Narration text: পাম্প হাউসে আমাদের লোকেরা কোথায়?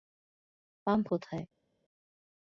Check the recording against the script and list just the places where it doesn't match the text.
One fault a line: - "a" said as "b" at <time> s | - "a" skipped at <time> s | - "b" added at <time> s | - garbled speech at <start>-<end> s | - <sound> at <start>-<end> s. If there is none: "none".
- "হাউসে আমাদের লোকেরা" skipped at 1.1 s